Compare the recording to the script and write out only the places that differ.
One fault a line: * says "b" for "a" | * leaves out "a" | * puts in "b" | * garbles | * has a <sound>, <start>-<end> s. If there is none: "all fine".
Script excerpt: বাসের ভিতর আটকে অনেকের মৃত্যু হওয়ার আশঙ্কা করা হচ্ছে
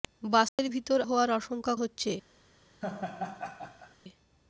* has a dropout, 0.5-0.6 s
* leaves out "আটকে অনেকের মৃত্যু"
* leaves out "করা"
* has a laugh, 2.8-3.9 s